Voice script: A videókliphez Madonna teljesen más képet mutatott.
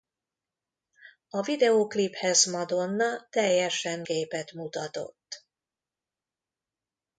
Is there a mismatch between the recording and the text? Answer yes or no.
yes